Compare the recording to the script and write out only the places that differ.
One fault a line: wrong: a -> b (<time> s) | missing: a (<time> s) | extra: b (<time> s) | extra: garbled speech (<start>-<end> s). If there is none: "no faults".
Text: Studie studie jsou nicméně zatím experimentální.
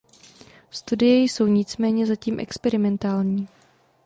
missing: studie (1.2 s)